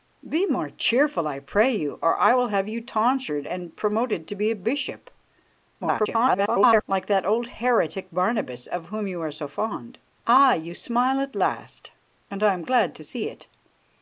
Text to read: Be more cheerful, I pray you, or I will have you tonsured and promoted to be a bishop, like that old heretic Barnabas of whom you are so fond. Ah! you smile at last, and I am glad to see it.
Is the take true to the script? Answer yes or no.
no